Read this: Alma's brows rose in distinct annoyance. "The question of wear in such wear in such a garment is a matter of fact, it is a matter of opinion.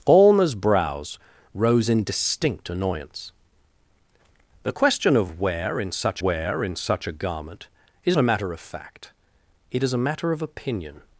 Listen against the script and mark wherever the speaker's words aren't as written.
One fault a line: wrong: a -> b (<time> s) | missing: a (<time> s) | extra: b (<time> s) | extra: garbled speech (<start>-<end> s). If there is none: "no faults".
no faults